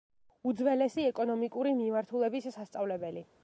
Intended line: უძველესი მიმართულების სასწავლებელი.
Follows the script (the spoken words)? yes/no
no